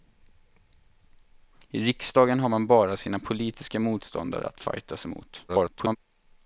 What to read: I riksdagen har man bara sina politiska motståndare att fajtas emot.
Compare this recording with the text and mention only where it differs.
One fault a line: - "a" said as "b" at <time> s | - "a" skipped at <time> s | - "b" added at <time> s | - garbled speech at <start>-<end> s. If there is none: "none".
- garbled speech at 5.5-6.0 s